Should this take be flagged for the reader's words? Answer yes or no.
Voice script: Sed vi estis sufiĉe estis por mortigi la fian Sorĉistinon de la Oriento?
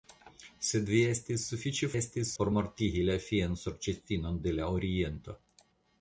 no